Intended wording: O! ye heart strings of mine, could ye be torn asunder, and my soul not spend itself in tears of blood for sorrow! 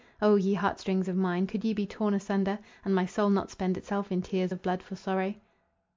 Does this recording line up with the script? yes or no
yes